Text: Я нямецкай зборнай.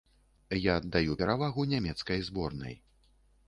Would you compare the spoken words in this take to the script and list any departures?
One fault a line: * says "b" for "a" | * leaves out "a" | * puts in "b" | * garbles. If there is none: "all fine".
* puts in "аддаю перавагу"